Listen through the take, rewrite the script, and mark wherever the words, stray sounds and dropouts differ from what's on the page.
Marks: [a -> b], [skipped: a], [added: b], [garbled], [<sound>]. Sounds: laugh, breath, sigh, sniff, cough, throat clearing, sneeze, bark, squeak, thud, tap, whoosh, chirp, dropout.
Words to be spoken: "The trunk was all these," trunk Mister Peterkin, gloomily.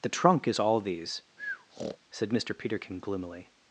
"The trunk [was -> is] all these," [breath] [trunk -> said] Mister Peterkin, gloomily.